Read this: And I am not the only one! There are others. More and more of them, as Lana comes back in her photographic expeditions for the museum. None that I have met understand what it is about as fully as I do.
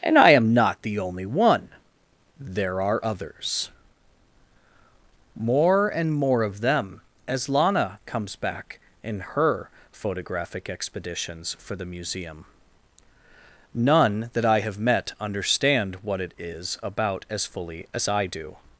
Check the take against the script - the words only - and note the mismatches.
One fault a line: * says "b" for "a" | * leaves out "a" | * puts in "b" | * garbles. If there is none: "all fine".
all fine